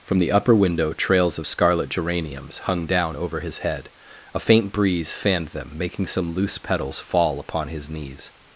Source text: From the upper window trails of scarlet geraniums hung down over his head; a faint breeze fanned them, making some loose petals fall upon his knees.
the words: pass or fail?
pass